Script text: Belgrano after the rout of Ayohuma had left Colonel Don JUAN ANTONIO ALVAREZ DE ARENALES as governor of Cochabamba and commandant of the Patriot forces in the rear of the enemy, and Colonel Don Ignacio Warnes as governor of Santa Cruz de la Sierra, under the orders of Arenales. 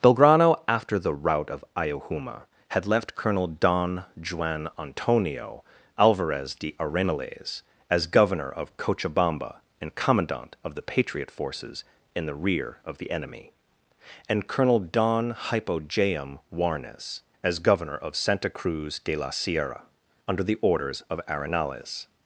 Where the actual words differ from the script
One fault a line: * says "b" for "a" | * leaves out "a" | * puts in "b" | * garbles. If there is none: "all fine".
* says "Hypogeum" for "Ignacio"